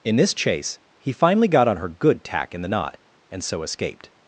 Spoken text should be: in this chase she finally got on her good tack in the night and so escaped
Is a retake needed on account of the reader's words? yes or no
yes